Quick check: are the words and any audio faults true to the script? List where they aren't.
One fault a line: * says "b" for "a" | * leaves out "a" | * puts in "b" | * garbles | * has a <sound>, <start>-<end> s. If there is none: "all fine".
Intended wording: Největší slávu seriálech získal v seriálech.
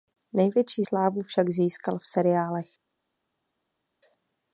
* says "však" for "seriálech"